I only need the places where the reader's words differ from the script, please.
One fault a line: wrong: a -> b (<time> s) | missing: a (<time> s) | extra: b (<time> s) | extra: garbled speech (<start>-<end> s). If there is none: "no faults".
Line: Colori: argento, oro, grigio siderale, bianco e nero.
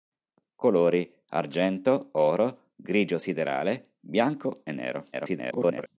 extra: garbled speech (5.1-5.9 s)